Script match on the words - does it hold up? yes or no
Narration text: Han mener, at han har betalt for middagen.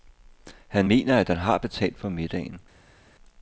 yes